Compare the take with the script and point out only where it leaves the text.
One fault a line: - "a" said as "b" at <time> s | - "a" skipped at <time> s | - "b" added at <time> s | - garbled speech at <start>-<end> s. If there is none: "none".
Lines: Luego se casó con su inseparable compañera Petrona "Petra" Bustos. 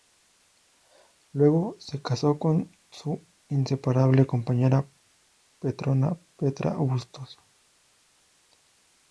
none